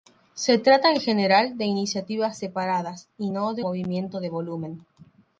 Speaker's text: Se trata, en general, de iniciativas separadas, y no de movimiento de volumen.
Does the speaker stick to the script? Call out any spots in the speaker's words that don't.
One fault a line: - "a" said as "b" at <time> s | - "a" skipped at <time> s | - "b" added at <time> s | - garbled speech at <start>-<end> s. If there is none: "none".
none